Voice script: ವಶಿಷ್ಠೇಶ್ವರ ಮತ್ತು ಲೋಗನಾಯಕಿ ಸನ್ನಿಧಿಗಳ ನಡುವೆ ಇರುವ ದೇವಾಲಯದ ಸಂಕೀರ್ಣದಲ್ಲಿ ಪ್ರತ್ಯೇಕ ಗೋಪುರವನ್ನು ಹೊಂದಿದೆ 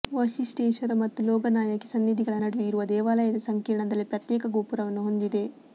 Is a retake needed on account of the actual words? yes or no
no